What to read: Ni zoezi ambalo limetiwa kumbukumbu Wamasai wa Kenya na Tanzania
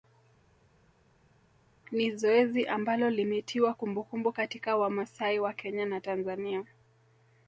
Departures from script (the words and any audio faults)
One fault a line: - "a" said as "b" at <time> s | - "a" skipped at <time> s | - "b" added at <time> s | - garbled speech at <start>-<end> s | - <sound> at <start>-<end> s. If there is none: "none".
- "katika" added at 4.3 s